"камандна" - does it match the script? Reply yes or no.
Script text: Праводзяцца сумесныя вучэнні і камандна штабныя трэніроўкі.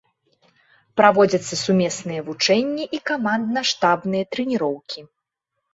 yes